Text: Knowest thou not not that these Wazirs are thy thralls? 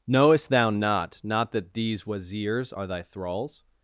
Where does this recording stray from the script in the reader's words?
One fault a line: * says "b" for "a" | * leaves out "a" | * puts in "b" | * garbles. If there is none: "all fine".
all fine